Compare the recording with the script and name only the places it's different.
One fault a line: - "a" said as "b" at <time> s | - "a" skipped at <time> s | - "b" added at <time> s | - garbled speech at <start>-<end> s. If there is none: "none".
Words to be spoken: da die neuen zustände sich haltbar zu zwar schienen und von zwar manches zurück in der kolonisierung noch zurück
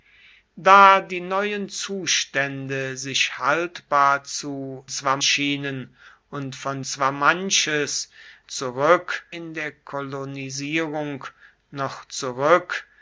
none